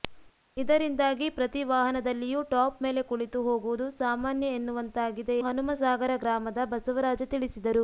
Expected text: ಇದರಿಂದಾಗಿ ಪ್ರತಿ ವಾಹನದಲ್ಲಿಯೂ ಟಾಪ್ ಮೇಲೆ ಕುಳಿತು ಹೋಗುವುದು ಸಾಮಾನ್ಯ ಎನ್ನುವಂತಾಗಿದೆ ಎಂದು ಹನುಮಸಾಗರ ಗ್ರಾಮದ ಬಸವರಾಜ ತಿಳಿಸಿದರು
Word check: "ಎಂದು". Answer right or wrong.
wrong